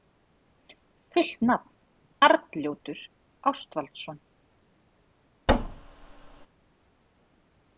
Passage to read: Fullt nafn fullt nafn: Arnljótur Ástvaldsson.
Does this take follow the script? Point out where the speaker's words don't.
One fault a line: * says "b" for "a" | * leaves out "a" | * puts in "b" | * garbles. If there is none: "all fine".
* leaves out "fullt nafn"